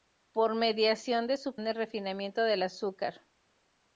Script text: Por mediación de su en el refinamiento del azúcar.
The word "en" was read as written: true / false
true